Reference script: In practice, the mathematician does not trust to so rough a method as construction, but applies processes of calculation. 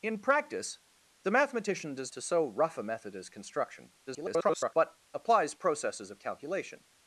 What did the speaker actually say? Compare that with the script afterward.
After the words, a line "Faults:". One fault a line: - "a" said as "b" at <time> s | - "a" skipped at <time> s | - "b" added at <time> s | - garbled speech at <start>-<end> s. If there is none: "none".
In practice, the mathematician does to so rough a method as construction, [garbled] but applies processes of calculation.
Faults:
- "not trust" skipped at 2.1 s
- garbled speech at 4.1-4.7 s